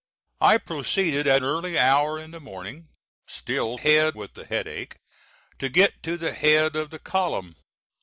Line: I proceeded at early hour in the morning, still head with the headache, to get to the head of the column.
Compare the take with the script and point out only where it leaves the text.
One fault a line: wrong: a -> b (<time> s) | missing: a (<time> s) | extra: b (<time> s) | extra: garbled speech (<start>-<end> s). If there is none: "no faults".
no faults